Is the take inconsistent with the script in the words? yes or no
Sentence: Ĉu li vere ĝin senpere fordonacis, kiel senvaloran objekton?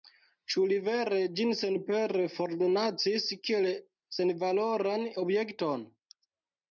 no